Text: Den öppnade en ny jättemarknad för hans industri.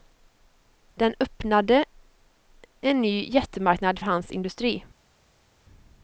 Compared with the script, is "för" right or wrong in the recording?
wrong